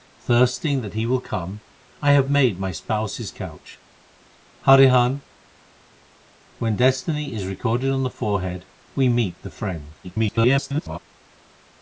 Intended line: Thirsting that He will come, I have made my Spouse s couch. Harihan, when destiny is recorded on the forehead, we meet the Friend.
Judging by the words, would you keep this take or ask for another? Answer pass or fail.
fail